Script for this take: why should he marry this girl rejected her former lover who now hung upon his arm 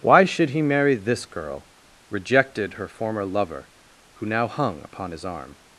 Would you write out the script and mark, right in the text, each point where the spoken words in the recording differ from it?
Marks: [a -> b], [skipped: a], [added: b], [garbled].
why should he marry this girl rejected her former lover who now hung upon his arm